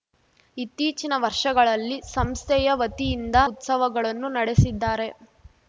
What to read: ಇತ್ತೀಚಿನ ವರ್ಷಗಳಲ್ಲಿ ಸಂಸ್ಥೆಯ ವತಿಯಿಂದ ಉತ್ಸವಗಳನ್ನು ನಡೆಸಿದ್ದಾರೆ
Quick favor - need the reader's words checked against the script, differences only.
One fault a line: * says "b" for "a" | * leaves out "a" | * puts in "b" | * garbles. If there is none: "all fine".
all fine